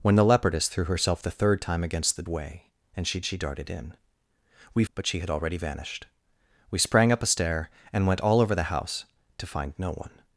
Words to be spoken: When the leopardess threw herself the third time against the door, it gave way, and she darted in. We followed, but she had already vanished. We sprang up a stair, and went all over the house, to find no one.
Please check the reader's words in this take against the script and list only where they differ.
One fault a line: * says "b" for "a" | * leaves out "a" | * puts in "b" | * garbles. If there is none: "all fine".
* leaves out "door it gave"
* puts in "she"
* leaves out "followed"